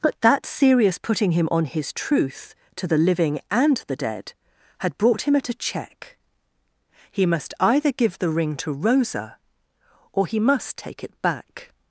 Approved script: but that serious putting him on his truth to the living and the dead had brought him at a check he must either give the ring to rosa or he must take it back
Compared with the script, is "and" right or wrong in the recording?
right